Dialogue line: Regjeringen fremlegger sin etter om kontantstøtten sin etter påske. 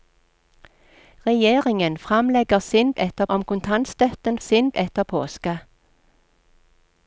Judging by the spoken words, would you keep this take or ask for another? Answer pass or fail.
pass